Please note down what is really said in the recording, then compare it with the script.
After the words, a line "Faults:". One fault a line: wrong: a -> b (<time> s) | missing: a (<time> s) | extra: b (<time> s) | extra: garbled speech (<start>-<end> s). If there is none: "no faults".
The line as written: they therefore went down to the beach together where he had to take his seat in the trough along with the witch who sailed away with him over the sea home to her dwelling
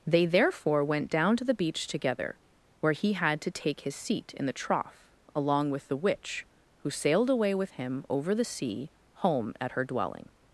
they therefore went down to the beach together where he had to take his seat in the trough along with the witch who sailed away with him over the sea home at her dwelling
Faults:
wrong: to -> at (9.6 s)